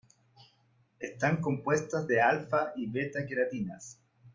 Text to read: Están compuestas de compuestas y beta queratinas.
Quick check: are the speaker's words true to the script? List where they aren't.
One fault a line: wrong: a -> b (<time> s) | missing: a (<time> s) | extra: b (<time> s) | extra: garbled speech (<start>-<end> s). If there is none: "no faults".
wrong: compuestas -> alfa (2.2 s)